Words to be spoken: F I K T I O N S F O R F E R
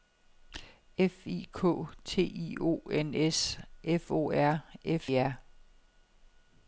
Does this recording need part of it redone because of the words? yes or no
no